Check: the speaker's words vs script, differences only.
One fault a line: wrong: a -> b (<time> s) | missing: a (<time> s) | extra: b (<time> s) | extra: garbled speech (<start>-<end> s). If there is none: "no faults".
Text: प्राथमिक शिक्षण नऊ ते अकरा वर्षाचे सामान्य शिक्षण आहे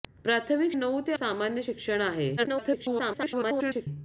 missing: शिक्षण (0.7 s)
missing: अकरा वर्षाचे (1.1 s)
extra: garbled speech (2.4-3.9 s)